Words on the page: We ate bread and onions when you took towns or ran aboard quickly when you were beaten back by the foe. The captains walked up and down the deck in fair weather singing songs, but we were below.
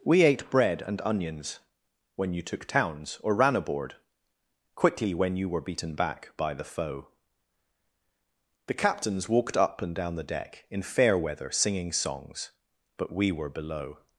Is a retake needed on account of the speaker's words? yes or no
no